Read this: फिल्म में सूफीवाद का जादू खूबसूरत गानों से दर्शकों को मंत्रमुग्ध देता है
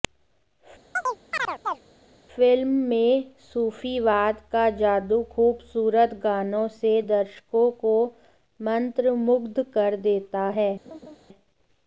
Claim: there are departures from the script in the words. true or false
true